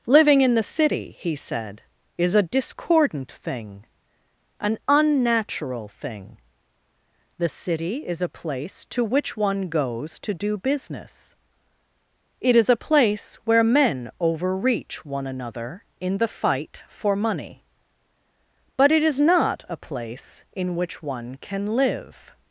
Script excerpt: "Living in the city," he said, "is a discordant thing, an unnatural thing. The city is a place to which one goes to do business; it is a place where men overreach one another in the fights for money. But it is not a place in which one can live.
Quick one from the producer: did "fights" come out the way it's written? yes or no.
no